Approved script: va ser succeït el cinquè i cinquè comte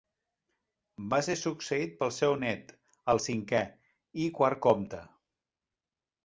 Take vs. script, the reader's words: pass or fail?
fail